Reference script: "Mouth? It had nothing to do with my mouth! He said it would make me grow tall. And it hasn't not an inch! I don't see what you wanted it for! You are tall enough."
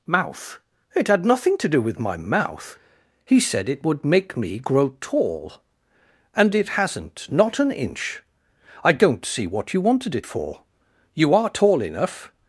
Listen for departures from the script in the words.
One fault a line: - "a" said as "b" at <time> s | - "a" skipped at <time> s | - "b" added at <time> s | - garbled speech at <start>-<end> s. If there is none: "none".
none